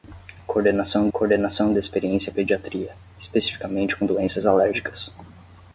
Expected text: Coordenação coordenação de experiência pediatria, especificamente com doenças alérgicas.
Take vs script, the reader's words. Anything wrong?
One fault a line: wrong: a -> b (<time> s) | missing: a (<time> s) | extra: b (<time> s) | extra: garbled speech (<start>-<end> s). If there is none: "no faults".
no faults